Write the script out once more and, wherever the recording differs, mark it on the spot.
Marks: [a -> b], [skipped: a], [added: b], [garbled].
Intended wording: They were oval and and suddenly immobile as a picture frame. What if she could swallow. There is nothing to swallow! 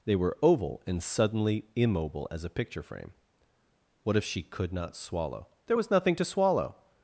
They were oval and [skipped: and] suddenly immobile as a picture frame. What if she could [added: not] swallow. There [is -> was] nothing to swallow!